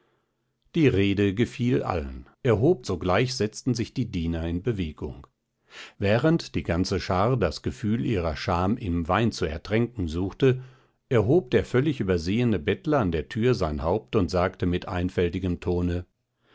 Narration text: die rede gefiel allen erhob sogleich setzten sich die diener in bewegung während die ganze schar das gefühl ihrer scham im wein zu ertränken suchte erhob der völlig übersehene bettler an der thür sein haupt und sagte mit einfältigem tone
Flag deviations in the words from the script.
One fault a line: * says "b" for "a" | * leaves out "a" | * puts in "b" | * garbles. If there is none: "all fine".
all fine